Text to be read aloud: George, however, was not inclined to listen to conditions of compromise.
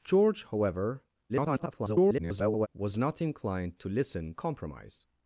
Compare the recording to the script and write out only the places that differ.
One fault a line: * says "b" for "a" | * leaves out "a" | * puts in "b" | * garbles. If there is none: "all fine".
* garbles
* leaves out "to conditions of"